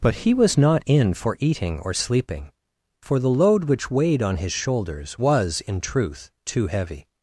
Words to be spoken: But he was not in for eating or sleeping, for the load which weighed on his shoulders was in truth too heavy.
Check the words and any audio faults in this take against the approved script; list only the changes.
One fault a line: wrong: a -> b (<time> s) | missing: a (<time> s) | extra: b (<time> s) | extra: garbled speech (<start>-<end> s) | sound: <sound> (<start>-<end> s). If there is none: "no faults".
no faults